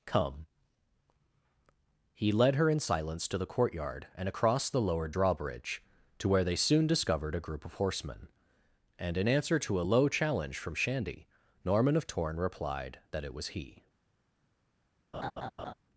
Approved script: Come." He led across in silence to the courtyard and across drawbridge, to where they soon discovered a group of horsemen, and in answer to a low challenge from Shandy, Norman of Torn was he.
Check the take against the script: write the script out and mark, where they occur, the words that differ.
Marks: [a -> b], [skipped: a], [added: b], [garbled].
Come." He led [across -> her] in silence to the courtyard and across [added: the lowered] drawbridge, to where they soon discovered a group of horsemen, and in answer to a low challenge from Shandy, Norman of Torn [added: replied that it] was he.